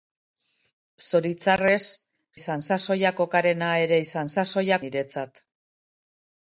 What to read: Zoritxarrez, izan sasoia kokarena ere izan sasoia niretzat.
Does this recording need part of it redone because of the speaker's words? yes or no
no